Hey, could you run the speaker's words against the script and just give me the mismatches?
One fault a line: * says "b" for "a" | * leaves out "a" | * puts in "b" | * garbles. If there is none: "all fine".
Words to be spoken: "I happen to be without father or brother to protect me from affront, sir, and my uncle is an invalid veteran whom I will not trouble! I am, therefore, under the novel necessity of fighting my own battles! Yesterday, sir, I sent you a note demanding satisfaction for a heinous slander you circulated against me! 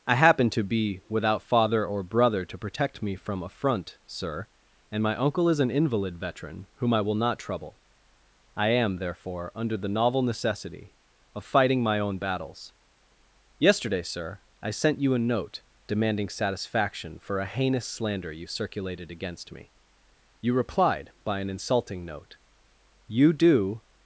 * puts in "You replied by an insulting note You do"